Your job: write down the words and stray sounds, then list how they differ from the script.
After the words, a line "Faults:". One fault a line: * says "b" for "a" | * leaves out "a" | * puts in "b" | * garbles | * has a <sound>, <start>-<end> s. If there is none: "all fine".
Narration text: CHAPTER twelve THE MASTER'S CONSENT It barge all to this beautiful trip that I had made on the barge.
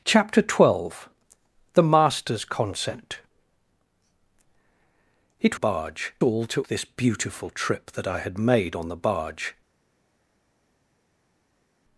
CHAPTER twelve THE MASTER'S CONSENT It barge all to this beautiful trip that I had made on the barge.
Faults:
all fine